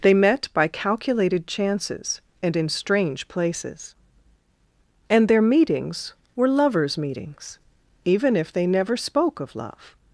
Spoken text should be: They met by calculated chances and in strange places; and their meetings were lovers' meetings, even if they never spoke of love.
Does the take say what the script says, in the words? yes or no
yes